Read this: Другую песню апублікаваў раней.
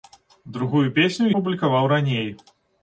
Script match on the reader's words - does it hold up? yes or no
yes